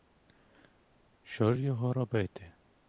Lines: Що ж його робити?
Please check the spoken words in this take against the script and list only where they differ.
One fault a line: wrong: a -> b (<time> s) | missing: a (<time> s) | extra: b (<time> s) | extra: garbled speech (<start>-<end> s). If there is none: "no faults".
no faults